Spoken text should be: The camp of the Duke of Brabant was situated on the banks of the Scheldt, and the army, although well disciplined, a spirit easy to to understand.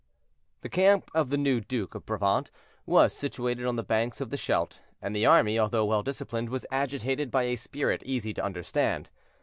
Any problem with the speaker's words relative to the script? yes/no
yes